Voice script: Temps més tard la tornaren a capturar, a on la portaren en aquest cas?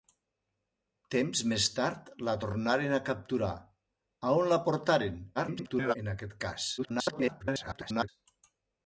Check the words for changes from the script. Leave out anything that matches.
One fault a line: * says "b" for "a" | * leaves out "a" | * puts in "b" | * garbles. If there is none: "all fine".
* garbles
* garbles